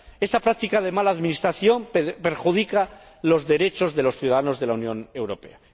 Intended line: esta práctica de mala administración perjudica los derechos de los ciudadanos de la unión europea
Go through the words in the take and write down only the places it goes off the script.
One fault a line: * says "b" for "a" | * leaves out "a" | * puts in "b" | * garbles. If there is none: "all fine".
all fine